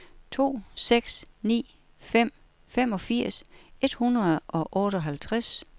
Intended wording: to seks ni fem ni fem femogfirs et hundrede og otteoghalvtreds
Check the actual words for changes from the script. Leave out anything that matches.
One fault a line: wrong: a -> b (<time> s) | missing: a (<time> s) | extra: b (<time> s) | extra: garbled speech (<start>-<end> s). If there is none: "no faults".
missing: ni fem (2.3 s)